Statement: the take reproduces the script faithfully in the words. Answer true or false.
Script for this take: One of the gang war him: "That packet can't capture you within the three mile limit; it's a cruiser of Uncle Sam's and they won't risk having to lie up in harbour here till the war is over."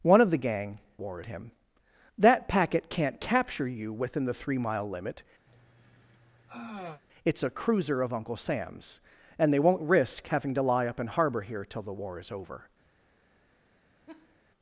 true